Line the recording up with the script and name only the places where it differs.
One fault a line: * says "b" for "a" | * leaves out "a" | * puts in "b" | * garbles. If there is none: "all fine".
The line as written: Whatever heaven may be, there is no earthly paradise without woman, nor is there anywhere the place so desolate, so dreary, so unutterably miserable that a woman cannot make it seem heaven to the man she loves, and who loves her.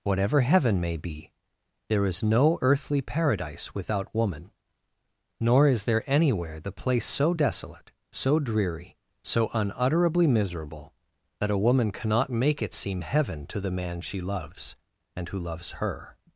all fine